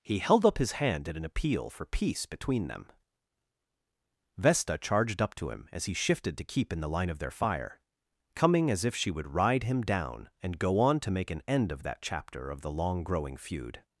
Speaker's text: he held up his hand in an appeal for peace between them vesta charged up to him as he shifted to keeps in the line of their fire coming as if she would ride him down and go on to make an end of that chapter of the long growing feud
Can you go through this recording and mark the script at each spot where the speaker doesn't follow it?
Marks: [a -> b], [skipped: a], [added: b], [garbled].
he held up his hand in an appeal for peace between them vesta charged up to him as he shifted to [keeps -> keep] in the line of their fire coming as if she would ride him down and go on to make an end of that chapter of the long growing feud